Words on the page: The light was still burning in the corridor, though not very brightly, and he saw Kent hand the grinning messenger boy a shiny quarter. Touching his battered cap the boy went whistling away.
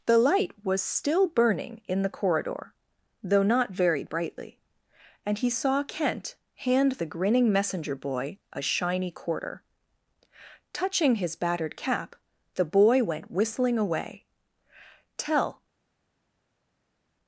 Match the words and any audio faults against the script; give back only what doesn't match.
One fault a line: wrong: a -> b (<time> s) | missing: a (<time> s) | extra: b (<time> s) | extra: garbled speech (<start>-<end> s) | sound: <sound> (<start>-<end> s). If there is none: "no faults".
extra: Tell (15.2 s)